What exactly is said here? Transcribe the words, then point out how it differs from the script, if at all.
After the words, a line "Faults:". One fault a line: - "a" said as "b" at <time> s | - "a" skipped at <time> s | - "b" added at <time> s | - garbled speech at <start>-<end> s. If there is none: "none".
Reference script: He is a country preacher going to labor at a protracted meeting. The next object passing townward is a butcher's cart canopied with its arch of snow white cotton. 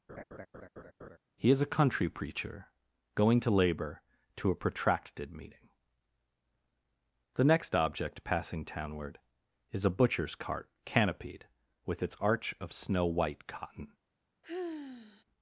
He is a country preacher going to labor to a protracted meeting. The next object passing townward is a butcher's cart canopied with its arch of snow white cotton.
Faults:
- "at" said as "to" at 4.3 s